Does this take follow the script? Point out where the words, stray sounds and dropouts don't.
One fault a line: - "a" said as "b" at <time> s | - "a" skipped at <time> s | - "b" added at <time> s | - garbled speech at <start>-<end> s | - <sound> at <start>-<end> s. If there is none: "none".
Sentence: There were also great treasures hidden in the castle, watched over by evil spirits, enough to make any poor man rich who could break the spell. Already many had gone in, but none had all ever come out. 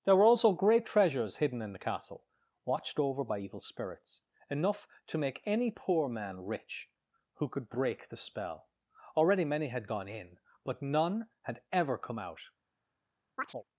- "all" skipped at 11.6 s
- chirp at 13.4-13.6 s